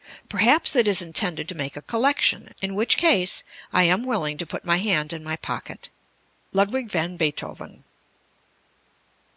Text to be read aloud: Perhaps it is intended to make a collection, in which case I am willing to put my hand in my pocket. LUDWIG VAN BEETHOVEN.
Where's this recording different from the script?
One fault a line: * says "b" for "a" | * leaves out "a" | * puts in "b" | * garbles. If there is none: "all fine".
all fine